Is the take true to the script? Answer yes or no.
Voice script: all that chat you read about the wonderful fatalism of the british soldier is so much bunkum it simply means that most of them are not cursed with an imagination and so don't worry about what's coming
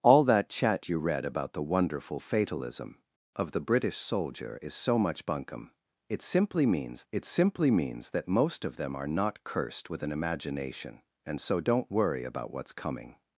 no